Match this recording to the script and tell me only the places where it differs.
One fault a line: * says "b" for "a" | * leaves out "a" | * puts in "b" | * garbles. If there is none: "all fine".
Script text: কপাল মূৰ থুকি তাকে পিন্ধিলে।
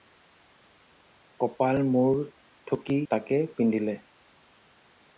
all fine